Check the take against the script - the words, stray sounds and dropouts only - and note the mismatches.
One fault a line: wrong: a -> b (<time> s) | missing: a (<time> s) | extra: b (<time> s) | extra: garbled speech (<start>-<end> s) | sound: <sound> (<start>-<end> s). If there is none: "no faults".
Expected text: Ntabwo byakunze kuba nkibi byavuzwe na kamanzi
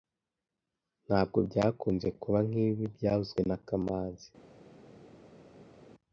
no faults